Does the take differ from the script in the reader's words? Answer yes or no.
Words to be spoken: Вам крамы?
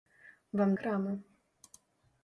no